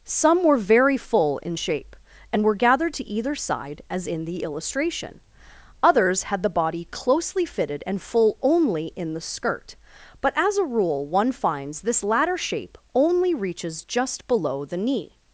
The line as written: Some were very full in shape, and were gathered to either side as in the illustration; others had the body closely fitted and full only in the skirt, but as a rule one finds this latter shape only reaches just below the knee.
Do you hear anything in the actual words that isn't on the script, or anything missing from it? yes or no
no